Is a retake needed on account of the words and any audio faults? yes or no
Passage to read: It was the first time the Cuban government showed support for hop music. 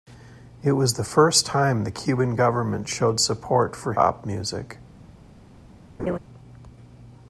yes